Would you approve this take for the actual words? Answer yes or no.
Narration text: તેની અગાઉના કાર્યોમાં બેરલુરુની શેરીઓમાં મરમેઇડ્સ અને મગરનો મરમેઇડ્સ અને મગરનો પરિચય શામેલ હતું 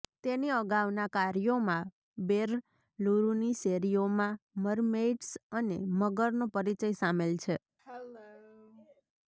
no